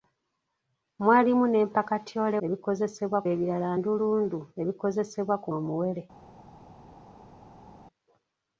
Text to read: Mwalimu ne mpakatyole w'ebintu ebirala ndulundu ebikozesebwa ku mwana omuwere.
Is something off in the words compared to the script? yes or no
yes